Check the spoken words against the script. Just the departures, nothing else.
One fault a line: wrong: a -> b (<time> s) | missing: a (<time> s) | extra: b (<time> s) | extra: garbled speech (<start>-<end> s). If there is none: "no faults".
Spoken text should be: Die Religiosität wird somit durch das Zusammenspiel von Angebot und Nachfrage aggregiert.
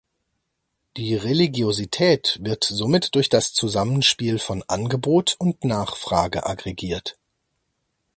no faults